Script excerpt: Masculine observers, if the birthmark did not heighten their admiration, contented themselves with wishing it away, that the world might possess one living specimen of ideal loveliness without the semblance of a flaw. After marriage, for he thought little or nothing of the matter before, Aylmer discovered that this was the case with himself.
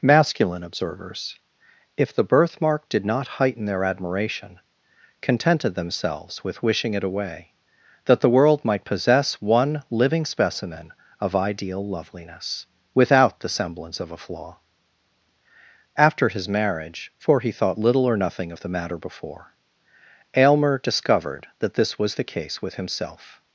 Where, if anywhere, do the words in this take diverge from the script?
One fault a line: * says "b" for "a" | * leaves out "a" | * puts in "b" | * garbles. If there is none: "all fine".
* puts in "his"